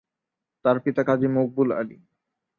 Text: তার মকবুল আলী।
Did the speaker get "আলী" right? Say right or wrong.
right